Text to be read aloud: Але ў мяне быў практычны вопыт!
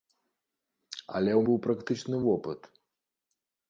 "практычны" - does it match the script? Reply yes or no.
yes